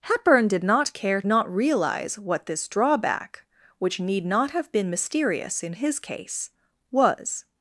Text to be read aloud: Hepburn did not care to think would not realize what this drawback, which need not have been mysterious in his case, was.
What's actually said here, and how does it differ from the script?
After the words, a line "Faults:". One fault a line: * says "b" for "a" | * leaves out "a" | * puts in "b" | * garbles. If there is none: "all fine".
Hepburn did not care not realize what this drawback, which need not have been mysterious in his case, was.
Faults:
* leaves out "to think would"